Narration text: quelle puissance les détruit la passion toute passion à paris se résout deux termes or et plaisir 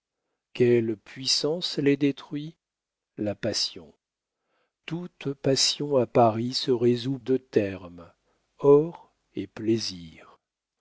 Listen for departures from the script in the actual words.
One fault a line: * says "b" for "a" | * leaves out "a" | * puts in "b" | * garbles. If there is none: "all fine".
all fine